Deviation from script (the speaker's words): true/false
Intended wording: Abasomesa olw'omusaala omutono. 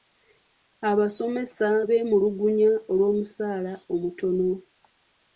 true